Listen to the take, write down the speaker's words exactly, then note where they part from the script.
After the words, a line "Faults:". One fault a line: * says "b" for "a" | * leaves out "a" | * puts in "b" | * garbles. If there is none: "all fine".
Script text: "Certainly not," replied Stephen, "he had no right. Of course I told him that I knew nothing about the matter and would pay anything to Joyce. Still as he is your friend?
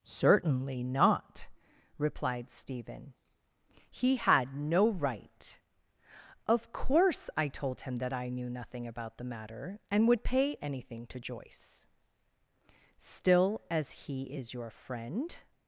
"Certainly not," replied Stephen, "he had no right. Of course I told him that I knew nothing about the matter and would pay anything to Joyce. Still as he is your friend?
Faults:
all fine